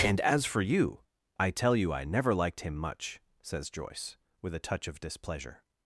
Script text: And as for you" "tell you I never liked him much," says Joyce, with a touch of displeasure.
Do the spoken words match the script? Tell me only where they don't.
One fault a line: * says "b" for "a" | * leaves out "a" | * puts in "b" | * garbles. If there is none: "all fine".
* puts in "I"